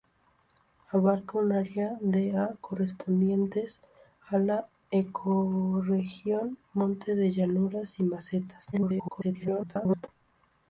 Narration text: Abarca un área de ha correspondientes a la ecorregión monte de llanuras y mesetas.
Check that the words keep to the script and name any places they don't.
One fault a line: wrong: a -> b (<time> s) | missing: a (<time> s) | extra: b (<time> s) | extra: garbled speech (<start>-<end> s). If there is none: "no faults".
extra: garbled speech (8.7-10.1 s)